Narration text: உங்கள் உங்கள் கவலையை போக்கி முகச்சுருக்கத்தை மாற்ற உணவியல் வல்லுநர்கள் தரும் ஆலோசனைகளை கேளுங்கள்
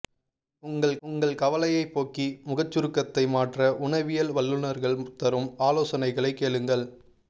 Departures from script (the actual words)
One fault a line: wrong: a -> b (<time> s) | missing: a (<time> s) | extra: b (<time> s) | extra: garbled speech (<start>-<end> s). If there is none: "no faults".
no faults